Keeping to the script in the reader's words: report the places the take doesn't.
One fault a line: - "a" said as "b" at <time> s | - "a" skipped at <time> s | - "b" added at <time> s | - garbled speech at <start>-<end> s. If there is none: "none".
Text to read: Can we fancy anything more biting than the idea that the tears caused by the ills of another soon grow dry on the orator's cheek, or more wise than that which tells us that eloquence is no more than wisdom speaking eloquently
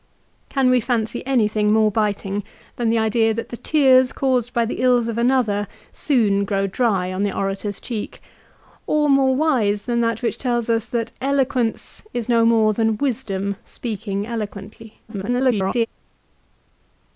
- garbled speech at 15.1-15.9 s